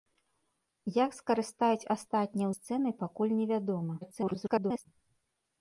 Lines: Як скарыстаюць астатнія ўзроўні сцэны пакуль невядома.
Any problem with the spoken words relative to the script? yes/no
yes